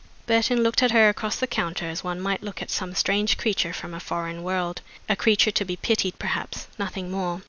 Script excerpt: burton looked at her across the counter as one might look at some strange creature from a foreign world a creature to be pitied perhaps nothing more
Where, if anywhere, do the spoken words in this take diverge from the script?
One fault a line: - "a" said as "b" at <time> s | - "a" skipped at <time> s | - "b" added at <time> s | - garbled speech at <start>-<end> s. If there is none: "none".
none